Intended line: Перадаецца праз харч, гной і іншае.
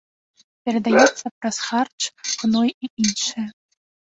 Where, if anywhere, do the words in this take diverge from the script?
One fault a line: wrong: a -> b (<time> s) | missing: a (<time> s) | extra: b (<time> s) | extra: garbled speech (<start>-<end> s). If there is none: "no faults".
no faults